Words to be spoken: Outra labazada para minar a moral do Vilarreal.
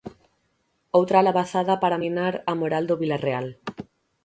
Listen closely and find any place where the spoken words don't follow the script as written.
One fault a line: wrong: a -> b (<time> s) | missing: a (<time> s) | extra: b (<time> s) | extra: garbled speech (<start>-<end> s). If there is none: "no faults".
no faults